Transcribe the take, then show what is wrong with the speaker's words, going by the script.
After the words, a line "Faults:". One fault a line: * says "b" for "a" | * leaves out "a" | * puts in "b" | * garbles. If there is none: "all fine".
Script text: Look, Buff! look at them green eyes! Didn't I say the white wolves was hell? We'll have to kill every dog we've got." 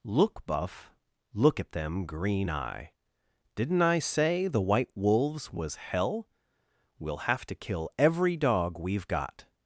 Look, Buff! look at them green eye! Didn't I say the white wolves was hell? We'll have to kill every dog we've got."
Faults:
* says "eye" for "eyes"